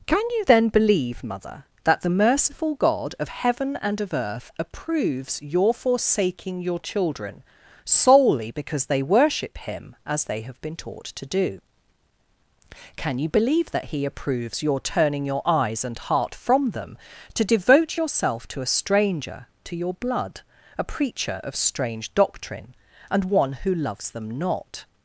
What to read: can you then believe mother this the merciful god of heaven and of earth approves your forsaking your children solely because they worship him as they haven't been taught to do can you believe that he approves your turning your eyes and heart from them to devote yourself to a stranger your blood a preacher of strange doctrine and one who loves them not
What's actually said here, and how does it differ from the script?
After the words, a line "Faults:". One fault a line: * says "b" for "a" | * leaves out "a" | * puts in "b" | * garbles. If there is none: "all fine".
can you then believe mother that the merciful god of heaven and of earth approves your forsaking your children solely because they worship him as they have been taught to do can you believe that he approves your turning your eyes and heart from them to devote yourself to a stranger to your blood a preacher of strange doctrine and one who loves them not
Faults:
* says "that" for "this"
* says "have" for "haven't"
* puts in "to"